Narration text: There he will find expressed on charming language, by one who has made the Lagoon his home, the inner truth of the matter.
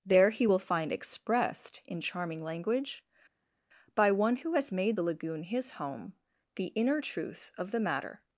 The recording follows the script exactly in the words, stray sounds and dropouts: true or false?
false